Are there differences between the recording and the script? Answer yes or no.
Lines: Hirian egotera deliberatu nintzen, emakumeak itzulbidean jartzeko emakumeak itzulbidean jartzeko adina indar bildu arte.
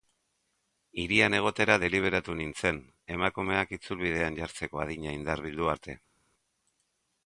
yes